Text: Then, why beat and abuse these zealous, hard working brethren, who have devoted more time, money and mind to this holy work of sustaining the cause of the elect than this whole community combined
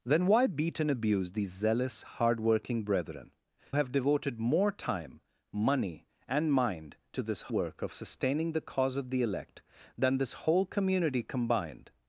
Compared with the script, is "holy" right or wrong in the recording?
wrong